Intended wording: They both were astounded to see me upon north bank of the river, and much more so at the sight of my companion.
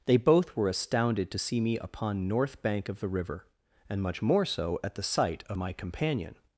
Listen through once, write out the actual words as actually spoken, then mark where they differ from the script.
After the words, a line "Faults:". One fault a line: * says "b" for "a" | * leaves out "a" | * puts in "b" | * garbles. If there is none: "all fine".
They both were astounded to see me upon north bank of the river, and much more so at the sight of my companion.
Faults:
all fine